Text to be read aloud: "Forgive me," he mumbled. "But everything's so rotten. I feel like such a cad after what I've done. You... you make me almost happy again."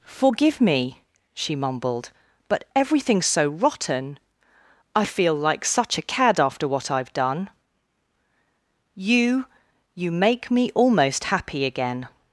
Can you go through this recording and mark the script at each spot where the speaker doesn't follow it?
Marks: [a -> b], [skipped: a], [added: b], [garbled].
"Forgive me," [he -> she] mumbled. "But everything's so rotten. I feel like such a cad after what I've done. You... you make me almost happy again."